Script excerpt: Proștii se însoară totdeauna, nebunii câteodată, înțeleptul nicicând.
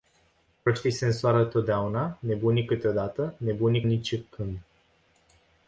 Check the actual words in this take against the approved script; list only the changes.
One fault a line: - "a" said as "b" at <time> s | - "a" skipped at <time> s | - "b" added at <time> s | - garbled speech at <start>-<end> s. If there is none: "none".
- "înțeleptul" said as "nebunii" at 3.4 s